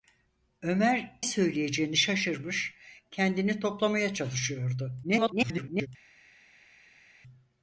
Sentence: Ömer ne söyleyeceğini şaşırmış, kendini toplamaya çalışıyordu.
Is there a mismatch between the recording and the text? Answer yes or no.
yes